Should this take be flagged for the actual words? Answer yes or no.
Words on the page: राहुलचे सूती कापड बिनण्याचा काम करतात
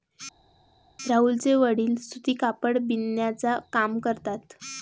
yes